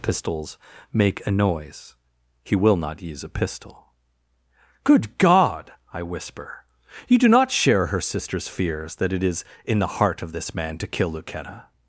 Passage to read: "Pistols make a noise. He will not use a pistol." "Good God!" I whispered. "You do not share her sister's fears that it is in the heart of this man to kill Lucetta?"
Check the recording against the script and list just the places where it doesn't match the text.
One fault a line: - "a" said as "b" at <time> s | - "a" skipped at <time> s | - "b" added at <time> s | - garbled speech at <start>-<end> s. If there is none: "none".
- "whispered" said as "whisper" at 6.0 s